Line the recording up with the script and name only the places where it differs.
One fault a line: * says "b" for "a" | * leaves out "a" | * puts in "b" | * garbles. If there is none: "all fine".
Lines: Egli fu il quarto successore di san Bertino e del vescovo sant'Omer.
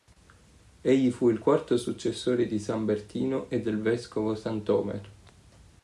all fine